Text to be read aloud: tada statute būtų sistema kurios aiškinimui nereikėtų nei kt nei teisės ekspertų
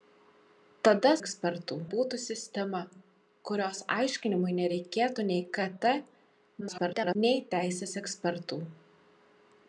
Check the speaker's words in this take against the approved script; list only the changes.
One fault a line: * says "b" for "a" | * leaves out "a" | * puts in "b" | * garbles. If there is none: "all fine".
* says "ekspertų" for "statute"
* garbles